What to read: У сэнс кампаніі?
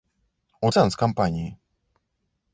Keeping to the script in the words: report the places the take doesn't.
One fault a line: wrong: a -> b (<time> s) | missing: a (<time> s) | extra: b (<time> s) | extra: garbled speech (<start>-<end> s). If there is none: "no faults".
no faults